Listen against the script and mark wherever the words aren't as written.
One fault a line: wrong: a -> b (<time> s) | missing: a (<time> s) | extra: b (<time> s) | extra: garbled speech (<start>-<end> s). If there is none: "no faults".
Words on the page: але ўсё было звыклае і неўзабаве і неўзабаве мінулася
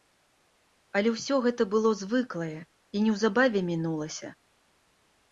extra: гэта (1.4 s)
missing: і неўзабаве (3.6 s)